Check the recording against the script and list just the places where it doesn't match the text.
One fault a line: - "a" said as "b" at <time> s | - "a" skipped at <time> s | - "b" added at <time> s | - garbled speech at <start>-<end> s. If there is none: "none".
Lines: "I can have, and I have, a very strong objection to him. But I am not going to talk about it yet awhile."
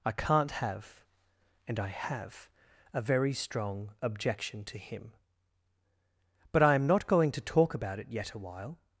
- "can" said as "can't" at 0.1 s